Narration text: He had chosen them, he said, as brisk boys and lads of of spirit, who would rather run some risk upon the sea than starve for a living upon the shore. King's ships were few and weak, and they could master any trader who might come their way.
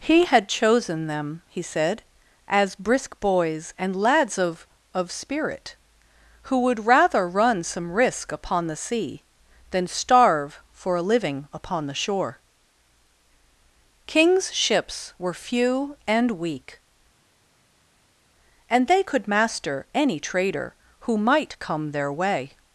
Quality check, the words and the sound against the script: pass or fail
pass